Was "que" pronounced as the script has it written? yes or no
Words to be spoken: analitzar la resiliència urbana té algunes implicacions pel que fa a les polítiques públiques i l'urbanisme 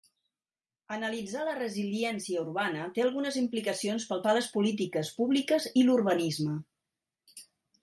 no